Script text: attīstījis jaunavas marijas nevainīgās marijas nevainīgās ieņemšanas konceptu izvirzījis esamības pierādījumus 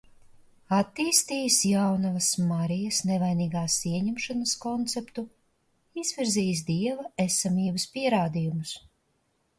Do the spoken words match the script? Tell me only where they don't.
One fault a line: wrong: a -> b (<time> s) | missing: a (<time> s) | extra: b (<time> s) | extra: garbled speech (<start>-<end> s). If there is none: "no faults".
missing: marijas nevainīgās (3.8 s)
extra: dieva (6.7 s)